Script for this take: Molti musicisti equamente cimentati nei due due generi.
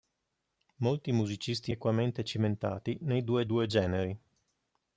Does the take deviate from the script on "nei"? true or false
false